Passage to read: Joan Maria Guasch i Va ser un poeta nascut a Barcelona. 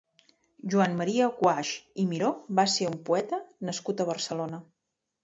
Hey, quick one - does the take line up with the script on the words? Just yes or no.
no